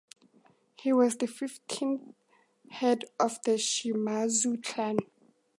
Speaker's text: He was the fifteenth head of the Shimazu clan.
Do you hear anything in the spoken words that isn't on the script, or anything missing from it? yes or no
no